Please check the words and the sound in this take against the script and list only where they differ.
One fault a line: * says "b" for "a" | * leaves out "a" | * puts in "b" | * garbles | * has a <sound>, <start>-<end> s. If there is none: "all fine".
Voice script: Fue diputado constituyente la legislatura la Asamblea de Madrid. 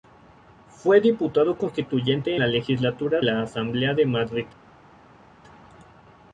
all fine